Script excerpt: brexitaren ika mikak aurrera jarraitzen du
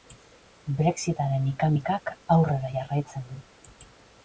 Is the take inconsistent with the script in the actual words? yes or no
no